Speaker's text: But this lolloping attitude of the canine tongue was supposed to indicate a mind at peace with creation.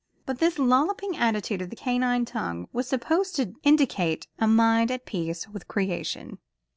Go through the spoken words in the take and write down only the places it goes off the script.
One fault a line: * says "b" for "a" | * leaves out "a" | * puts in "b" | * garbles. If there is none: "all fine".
all fine